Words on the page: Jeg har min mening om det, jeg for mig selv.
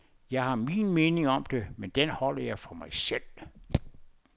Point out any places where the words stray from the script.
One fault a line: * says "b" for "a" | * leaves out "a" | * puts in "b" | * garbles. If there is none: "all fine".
* puts in "men den holder"